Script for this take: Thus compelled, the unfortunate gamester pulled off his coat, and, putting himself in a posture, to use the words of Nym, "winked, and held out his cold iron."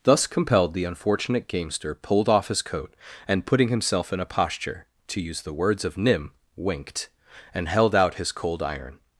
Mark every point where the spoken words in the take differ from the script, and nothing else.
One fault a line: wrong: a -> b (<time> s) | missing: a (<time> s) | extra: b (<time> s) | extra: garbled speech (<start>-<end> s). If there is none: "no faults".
no faults